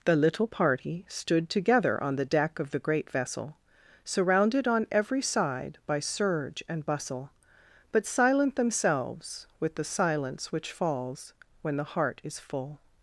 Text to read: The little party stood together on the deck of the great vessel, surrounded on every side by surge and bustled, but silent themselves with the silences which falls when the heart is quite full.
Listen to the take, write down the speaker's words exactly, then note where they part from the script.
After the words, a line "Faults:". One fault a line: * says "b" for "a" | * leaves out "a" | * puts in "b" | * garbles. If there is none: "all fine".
The little party stood together on the deck of the great vessel, surrounded on every side by surge and bustle, but silent themselves with the silence which falls when the heart is full.
Faults:
* says "bustle" for "bustled"
* says "silence" for "silences"
* leaves out "quite"